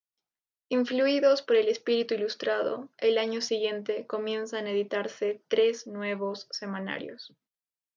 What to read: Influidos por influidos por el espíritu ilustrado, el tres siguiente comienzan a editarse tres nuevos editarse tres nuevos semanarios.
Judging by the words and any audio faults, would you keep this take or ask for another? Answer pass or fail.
fail